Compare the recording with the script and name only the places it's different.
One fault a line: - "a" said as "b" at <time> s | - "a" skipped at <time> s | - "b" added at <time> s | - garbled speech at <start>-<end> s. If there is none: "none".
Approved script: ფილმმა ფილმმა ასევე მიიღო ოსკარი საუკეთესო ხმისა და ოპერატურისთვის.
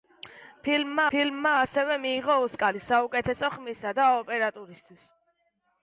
none